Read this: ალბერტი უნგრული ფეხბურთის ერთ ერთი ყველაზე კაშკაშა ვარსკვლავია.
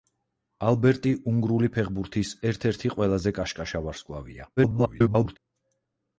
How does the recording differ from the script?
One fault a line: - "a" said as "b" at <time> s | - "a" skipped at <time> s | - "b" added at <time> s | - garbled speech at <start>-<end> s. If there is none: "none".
- garbled speech at 4.6-5.4 s